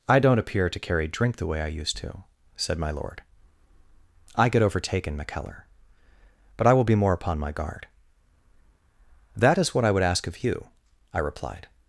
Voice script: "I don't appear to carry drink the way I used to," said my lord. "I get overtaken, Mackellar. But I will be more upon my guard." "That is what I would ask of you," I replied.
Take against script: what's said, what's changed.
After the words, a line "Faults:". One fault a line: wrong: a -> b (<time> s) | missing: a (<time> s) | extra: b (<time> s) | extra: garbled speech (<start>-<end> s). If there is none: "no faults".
"I don't appear to carry drink the way I used to," said my lord. "I get overtaken, Mackellar. But I will be more upon my guard." "That is what I would ask of you," I replied.
Faults:
no faults